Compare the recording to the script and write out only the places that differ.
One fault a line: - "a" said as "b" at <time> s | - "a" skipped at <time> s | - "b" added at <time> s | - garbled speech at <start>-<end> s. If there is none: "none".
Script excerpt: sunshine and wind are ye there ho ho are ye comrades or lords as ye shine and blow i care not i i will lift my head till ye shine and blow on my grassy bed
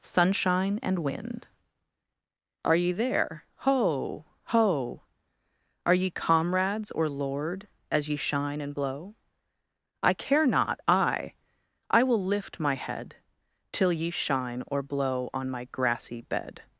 - "lords" said as "lord" at 7.1 s
- "and" said as "or" at 14.7 s